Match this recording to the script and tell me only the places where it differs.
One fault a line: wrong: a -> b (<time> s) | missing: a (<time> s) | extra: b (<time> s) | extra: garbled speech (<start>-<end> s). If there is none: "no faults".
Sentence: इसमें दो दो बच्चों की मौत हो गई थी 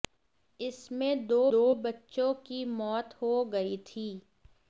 no faults